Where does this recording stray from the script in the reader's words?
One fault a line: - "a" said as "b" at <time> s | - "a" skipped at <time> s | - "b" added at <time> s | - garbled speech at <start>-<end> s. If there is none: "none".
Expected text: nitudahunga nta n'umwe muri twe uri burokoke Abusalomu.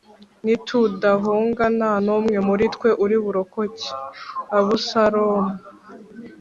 none